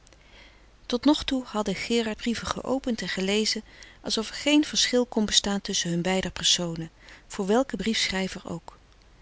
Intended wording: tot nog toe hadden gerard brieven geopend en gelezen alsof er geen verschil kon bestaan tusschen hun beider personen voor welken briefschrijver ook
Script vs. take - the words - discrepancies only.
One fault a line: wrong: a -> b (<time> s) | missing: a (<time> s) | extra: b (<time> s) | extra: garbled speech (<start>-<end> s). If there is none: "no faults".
no faults